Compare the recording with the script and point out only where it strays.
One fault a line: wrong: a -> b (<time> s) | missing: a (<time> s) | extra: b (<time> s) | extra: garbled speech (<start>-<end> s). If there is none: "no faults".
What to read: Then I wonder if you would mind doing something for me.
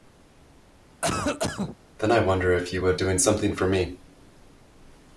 missing: mind (3.0 s)